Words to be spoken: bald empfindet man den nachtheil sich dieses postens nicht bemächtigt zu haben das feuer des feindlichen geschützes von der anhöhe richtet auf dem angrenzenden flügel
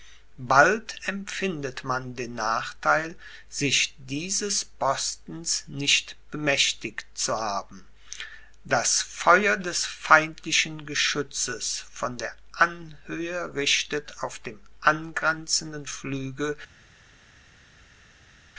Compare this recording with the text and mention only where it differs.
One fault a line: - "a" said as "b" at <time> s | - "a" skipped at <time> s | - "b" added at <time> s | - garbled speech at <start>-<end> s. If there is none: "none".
none